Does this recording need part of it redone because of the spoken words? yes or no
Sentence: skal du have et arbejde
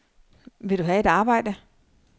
yes